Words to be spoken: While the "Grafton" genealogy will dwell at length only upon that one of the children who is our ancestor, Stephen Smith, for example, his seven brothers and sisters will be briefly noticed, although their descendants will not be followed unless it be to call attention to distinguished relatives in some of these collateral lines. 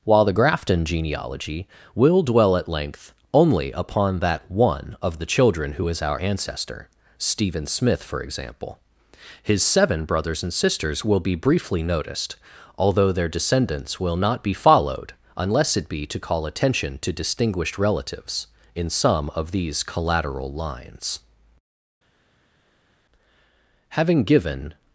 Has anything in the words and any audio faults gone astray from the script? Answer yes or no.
yes